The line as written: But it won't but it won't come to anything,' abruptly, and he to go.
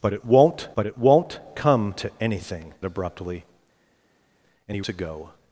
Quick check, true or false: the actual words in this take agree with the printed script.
true